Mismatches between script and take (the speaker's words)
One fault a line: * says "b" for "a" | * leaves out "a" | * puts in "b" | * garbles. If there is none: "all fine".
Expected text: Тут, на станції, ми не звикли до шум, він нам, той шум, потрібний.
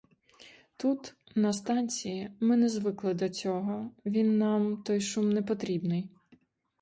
* says "цього" for "шум"
* puts in "не"